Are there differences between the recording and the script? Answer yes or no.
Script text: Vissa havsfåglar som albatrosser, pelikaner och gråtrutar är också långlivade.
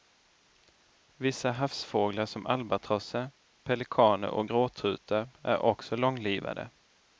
no